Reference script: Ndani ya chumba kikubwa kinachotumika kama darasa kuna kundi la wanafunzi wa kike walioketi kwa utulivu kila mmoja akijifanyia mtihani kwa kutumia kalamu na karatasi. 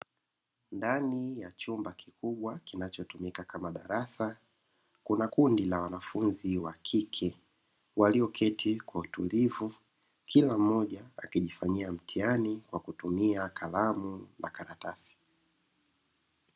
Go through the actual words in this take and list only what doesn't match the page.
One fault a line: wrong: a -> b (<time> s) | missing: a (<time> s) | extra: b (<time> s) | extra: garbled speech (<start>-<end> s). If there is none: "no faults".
no faults